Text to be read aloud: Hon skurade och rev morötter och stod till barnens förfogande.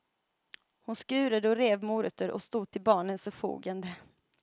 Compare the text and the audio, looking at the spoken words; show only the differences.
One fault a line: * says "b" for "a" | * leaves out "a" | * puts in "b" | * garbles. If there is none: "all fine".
all fine